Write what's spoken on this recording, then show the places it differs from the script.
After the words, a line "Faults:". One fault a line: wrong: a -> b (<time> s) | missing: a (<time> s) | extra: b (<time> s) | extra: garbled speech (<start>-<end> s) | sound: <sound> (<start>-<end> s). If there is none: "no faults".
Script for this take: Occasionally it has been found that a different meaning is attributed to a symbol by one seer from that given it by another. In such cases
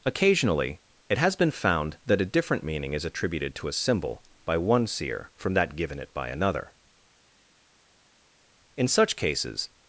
Occasionally it has been found that a different meaning is attributed to a symbol by one seer from that given it by another. In such cases
Faults:
no faults